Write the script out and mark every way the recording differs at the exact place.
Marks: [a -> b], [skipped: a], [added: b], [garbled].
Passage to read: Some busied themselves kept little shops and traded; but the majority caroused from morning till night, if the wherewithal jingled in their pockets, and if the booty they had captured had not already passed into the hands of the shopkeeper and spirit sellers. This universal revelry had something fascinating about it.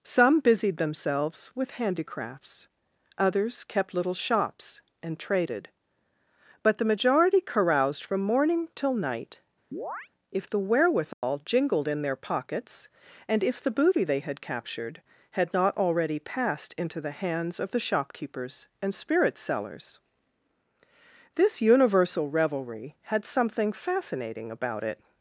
Some busied themselves [added: with handicrafts others] kept little shops and traded; but the majority caroused from morning till night, if the wherewithal jingled in their pockets, and if the booty they had captured had not already passed into the hands of the [shopkeeper -> shopkeepers] and spirit sellers. This universal revelry had something fascinating about it.